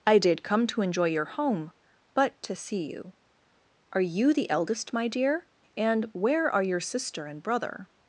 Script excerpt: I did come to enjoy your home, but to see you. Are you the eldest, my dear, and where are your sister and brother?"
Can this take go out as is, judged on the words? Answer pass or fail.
pass